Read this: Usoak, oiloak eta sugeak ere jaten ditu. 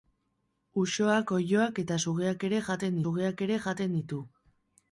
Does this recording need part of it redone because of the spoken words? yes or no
yes